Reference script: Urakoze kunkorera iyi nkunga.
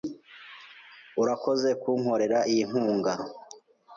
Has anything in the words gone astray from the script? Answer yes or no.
no